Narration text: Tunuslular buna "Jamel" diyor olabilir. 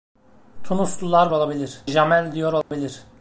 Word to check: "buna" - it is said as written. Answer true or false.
false